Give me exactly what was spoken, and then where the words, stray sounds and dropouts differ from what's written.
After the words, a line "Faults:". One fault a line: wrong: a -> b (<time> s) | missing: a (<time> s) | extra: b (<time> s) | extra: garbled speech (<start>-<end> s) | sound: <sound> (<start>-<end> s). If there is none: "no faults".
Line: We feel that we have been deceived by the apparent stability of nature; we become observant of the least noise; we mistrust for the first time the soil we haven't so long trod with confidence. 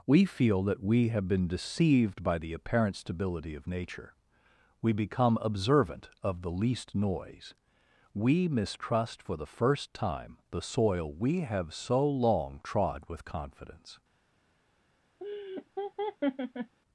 We feel that we have been deceived by the apparent stability of nature; we become observant of the least noise; we mistrust for the first time the soil we have so long trod with confidence.
Faults:
wrong: haven't -> have (11.4 s)
sound: laugh (15.2-16.8 s)